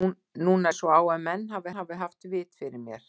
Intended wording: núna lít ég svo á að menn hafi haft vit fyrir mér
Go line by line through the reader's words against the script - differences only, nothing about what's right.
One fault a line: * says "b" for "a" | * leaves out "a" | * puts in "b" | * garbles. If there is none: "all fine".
* leaves out "lít"
* puts in "hafi"